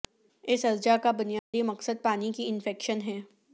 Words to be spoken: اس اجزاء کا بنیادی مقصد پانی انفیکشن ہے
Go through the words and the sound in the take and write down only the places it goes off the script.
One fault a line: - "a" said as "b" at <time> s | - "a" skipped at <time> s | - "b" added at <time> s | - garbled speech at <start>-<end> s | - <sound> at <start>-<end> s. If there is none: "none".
- dropout at 1.4-1.5 s
- "کی" added at 2.3 s